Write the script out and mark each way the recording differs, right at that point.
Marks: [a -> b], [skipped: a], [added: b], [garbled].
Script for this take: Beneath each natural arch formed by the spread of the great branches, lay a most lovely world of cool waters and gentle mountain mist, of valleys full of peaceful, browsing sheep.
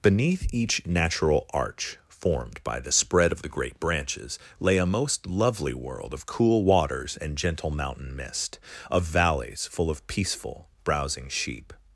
Beneath each natural arch formed by the spread of the great branches, lay a most lovely world of cool waters and gentle mountain mist, of valleys full of peaceful, browsing sheep.